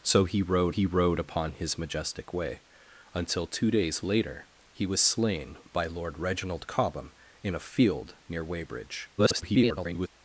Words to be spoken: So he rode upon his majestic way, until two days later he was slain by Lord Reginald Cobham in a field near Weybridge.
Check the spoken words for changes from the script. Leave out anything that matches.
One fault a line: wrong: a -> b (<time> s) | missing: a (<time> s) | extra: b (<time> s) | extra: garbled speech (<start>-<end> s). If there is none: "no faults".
extra: he rode (0.7 s)
extra: garbled speech (9.2-10.1 s)